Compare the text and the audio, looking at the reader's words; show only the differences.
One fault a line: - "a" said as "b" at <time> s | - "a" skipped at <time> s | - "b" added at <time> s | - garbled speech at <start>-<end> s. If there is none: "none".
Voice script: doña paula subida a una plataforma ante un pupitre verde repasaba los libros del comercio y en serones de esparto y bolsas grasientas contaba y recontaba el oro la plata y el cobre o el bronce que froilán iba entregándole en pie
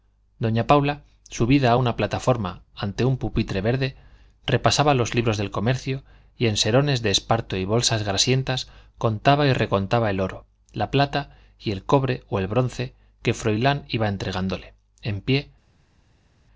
none